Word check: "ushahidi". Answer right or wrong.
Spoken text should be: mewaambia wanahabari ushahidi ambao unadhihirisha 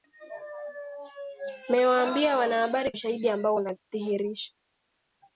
right